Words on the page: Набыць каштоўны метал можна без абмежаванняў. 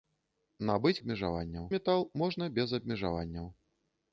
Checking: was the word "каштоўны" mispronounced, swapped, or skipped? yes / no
yes